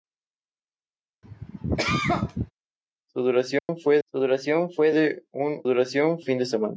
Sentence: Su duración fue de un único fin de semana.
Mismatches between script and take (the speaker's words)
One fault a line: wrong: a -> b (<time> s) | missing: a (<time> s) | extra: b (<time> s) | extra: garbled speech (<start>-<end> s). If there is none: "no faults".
extra: su duración fue (4.0 s)
wrong: único -> duración (5.6 s)